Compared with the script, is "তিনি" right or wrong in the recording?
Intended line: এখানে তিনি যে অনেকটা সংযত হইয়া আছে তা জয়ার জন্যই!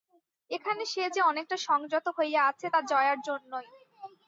wrong